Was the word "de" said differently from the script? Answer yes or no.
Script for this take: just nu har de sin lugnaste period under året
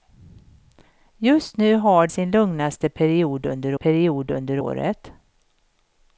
yes